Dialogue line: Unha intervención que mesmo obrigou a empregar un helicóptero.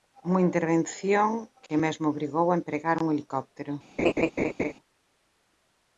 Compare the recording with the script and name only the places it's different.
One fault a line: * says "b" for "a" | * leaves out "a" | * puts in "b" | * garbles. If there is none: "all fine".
all fine